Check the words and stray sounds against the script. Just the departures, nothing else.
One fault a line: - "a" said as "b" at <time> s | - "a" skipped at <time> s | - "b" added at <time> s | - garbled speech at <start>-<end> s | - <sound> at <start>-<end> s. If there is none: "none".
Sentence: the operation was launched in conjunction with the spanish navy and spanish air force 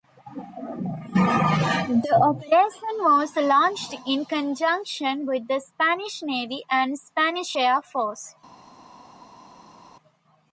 none